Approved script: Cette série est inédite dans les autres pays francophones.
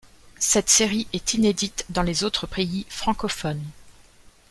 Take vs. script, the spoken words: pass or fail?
pass